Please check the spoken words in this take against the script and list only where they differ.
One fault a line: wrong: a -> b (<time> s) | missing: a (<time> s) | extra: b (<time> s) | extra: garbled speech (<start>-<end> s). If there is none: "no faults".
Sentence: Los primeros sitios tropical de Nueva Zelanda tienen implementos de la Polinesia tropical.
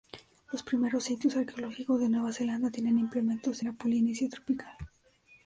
wrong: tropical -> arqueológicos (1.4 s)